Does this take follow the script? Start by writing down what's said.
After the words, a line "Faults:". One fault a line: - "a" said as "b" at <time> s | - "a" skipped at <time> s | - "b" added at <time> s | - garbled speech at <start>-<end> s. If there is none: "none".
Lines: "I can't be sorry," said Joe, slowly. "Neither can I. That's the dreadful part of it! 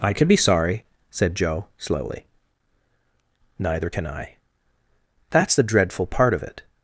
"I can be sorry," said Joe, slowly. "Neither can I. That's the dreadful part of it!
Faults:
- "can't" said as "can" at 0.1 s